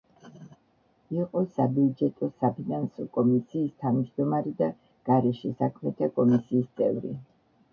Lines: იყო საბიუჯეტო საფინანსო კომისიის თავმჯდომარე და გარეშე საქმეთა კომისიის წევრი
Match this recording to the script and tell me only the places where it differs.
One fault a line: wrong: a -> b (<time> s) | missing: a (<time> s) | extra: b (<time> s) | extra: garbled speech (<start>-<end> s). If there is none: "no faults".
no faults